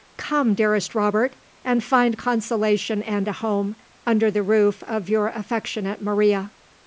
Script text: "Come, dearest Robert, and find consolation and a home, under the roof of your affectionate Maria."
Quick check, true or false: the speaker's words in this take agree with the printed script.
true